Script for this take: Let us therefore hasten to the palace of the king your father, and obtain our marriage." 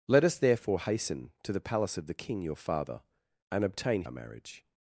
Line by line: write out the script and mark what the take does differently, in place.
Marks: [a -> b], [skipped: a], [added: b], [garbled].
Let us therefore hasten to the palace of the king your father, and obtain our marriage."